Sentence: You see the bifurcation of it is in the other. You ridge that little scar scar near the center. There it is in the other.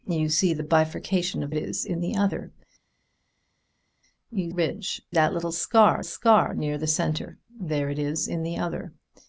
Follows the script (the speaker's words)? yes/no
yes